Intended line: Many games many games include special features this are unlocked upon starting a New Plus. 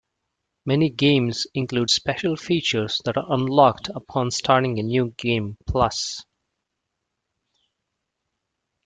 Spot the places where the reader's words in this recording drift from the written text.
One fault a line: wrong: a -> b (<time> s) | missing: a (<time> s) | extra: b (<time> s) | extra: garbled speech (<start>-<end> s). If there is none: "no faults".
missing: many games (1.4 s)
wrong: this -> that (3.0 s)
extra: Game (5.2 s)